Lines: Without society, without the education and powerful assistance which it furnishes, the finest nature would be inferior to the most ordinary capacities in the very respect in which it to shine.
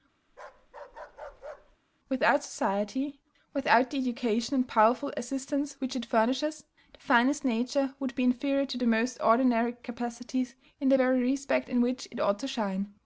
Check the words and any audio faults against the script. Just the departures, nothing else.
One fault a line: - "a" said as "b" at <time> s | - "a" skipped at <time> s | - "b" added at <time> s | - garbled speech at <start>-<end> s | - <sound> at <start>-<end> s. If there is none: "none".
- bark at 0.3-1.8 s
- "ought" added at 12.2 s